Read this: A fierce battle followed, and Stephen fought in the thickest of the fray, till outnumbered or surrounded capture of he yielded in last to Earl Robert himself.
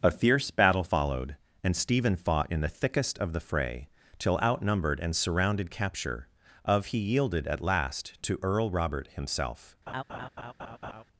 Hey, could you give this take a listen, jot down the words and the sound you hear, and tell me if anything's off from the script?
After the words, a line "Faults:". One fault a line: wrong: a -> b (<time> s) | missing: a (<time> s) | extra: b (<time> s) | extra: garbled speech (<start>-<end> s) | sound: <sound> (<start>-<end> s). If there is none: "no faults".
A fierce battle followed, and Stephen fought in the thickest of the fray, till outnumbered and surrounded capture of he yielded at last to Earl Robert himself.
Faults:
wrong: or -> and (5.0 s)
wrong: in -> at (7.5 s)
sound: laugh (9.9-11.0 s)